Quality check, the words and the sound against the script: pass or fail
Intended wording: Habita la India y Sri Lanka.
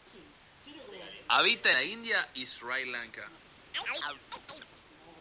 fail